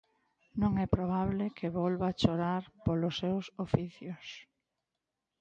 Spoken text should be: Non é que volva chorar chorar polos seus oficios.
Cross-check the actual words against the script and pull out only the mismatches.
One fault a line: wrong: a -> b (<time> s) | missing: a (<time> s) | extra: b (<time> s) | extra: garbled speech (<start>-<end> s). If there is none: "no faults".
extra: probable (1.0 s)
missing: chorar (2.6 s)